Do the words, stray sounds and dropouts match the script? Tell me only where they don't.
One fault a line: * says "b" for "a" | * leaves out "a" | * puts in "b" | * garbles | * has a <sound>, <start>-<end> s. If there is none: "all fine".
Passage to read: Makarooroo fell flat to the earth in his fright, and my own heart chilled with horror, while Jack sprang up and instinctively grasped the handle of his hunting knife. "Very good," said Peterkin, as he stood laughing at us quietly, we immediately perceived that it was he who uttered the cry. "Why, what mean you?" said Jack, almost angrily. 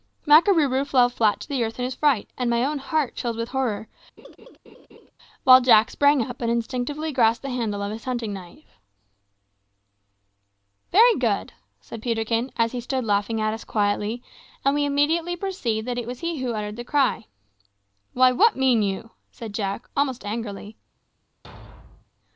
* has a laugh, 4.2-5.1 s
* puts in "and"
* has a thud, 21.4-22.1 s